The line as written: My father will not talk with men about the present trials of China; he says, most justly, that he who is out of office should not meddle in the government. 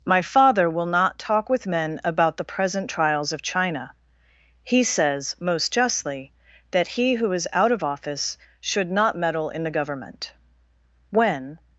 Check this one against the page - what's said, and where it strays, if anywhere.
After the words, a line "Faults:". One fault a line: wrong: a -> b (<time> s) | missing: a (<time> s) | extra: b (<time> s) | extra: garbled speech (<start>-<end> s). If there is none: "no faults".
My father will not talk with men about the present trials of China; he says, most justly, that he who is out of office should not meddle in the government. When
Faults:
extra: When (11.1 s)